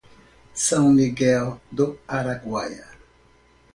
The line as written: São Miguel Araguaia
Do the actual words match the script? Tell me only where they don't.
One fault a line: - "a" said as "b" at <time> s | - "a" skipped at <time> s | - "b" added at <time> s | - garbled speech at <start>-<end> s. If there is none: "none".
- "do" added at 1.7 s